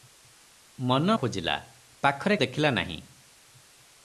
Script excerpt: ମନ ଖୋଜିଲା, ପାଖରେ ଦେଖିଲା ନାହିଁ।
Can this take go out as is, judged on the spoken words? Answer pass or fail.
pass